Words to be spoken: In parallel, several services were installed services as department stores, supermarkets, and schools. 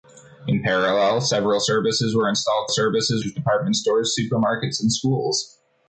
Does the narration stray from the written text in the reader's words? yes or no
no